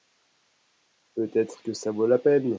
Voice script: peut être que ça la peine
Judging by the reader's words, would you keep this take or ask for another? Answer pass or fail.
fail